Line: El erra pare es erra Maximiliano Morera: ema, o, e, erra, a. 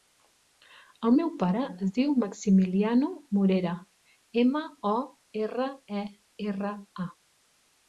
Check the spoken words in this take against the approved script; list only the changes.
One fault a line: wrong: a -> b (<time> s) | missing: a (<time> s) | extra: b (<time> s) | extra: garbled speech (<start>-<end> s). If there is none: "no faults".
wrong: erra -> meu (1.1 s)
wrong: erra -> diu (2.0 s)
extra: erra (5.4 s)